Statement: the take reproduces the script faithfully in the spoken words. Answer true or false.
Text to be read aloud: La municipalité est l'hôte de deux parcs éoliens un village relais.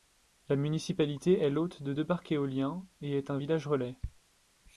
false